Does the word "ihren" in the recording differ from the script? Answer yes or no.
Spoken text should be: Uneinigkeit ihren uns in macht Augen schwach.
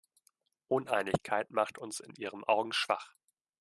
yes